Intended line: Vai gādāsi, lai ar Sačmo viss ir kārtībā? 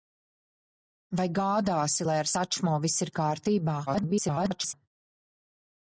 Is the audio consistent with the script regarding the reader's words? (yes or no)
no